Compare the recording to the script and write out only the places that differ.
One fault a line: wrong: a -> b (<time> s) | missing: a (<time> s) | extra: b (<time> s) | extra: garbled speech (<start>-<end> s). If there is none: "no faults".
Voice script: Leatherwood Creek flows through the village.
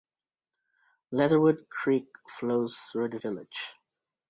no faults